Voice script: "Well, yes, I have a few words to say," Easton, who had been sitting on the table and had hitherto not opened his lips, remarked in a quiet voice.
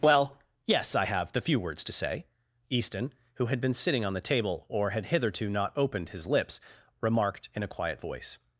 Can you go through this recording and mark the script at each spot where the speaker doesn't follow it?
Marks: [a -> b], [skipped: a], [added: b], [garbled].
"Well, yes, I have [a -> the] few words to say," Easton, who had been sitting on the table [and -> or] had hitherto not opened his lips, remarked in a quiet voice.